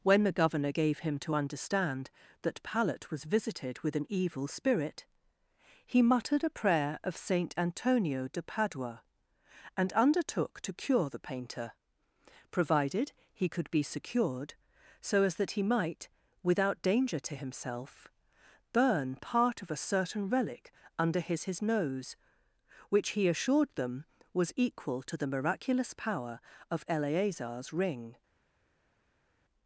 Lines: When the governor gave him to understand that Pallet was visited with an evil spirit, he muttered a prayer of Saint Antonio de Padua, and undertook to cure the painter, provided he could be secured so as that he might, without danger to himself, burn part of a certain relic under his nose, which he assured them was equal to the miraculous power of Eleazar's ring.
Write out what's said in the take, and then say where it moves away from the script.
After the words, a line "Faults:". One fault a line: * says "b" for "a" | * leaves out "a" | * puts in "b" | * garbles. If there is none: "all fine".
When the governor gave him to understand that Pallet was visited with an evil spirit, he muttered a prayer of Saint Antonio de Padua, and undertook to cure the painter, provided he could be secured so as that he might, without danger to himself, burn part of a certain relic under his his nose, which he assured them was equal to the miraculous power of Eleazar's ring.
Faults:
* puts in "his"